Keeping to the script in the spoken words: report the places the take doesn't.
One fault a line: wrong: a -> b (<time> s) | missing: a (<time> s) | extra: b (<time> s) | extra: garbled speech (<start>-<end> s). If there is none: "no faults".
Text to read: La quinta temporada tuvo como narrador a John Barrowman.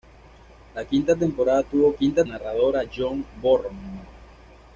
wrong: como -> quinta (1.9 s)